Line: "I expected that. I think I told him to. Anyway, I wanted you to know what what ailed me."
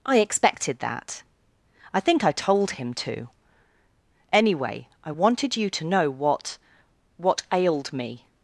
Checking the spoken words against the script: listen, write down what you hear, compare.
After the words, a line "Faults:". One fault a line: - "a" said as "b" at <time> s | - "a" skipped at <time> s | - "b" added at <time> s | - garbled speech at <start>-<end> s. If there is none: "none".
"I expected that. I think I told him to. Anyway, I wanted you to know what what ailed me."
Faults:
none